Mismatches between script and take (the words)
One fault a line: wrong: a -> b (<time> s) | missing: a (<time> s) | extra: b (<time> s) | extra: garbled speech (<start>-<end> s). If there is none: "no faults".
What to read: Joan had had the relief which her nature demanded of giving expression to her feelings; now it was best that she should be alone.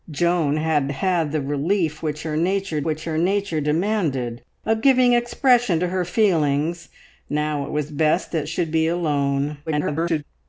extra: which her nature (2.8 s)
missing: she (8.5 s)
extra: garbled speech (9.7-10.2 s)